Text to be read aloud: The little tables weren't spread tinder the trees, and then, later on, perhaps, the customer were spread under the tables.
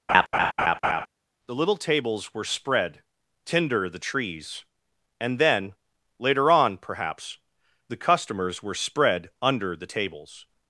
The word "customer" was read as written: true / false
false